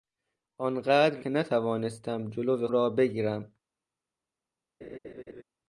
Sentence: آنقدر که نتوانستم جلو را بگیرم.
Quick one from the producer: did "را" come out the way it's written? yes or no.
yes